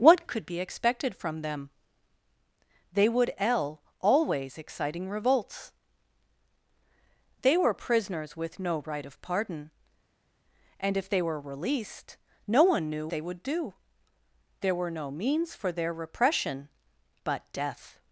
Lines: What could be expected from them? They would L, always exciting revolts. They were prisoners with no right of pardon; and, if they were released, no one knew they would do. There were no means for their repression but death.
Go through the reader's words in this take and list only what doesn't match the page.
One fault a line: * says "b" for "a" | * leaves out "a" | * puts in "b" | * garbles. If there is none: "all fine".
all fine